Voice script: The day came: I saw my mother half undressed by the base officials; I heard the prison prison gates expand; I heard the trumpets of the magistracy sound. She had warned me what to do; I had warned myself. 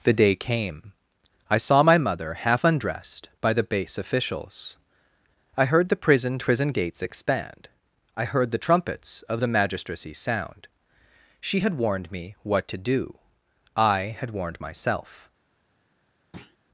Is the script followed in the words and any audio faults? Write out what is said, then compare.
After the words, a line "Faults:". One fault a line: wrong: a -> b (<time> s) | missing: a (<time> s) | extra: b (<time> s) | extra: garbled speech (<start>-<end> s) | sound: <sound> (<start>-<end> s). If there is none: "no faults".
The day came: I saw my mother half undressed by the base officials; I heard the prison prison gates expand; I heard the trumpets of the magistracy sound. She had warned me what to do; I had warned myself.
Faults:
sound: thud (16.3-16.6 s)